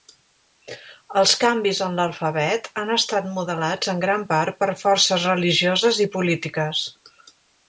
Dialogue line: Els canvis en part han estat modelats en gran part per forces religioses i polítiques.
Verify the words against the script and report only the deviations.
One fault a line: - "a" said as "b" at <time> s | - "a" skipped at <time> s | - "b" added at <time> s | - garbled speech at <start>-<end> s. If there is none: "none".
- "part" said as "l'alfabet" at 2.0 s